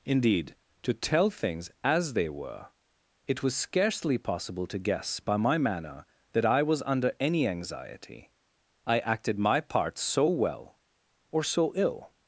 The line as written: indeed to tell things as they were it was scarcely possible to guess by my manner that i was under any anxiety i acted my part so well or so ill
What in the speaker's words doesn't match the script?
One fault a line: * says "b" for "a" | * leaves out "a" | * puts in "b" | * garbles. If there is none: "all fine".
all fine